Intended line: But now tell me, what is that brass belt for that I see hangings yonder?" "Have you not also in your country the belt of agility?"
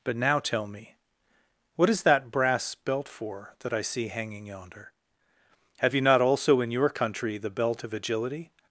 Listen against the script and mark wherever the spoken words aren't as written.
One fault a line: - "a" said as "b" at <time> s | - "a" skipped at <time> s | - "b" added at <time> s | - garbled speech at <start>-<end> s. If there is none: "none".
- "hangings" said as "hanging" at 4.1 s